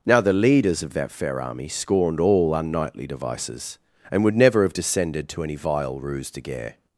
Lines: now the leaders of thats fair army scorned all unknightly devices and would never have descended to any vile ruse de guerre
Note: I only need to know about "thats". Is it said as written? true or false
false